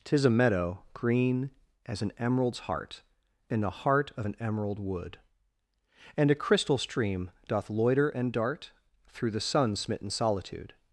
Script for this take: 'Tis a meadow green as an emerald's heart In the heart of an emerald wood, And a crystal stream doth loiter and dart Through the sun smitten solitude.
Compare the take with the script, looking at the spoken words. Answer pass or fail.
pass